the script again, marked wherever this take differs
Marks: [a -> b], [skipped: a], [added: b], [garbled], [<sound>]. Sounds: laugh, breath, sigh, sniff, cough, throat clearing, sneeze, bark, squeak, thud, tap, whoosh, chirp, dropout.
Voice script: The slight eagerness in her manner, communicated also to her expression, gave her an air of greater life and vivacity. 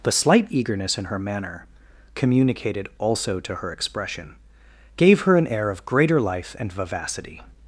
The slight eagerness in her manner, communicated also to her expression, gave her an air of greater life and vivacity.